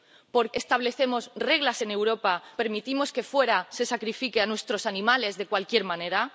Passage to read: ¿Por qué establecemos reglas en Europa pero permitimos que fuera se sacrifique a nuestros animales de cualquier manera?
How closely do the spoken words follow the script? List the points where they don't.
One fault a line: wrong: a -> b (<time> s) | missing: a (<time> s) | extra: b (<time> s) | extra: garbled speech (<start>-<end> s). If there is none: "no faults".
missing: qué (0.5 s)
missing: pero (2.3 s)